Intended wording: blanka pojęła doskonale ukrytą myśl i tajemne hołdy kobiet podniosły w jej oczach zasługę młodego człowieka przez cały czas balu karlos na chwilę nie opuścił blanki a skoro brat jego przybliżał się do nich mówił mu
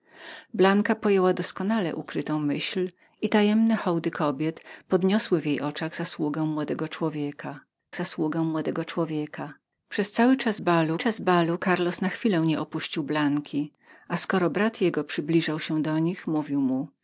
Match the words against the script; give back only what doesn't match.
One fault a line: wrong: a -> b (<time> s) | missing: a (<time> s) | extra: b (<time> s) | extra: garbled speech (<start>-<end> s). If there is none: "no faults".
extra: zasługę młodego człowieka (8.0 s)
extra: czas balu (11.0 s)